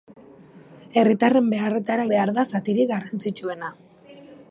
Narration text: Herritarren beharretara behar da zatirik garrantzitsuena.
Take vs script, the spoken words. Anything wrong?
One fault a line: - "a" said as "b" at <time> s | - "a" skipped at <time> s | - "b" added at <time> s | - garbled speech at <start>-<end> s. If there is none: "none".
none